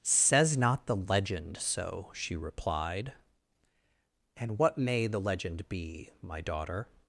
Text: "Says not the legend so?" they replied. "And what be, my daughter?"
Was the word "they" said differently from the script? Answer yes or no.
yes